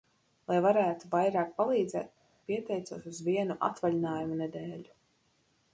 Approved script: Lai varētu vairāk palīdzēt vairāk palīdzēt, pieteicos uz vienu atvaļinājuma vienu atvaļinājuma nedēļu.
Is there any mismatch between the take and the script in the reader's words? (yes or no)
yes